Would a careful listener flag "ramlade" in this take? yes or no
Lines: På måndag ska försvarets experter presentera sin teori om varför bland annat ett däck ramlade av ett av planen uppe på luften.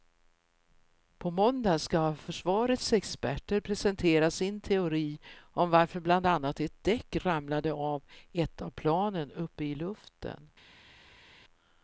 no